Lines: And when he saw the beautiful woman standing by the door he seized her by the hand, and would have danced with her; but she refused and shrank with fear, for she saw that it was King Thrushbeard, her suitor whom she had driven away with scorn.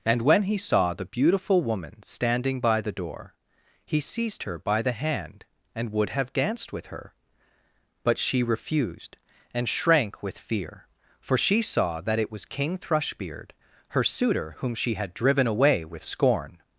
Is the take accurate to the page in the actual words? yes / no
yes